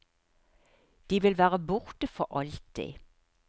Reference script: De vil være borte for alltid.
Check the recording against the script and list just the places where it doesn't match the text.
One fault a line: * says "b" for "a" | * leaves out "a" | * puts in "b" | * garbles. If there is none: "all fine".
all fine